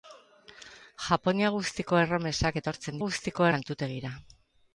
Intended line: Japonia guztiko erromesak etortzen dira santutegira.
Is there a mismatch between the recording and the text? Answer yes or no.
yes